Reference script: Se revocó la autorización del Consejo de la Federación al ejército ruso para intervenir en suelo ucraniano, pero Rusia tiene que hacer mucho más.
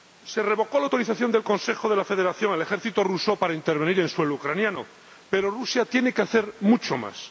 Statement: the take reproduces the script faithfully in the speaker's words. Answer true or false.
true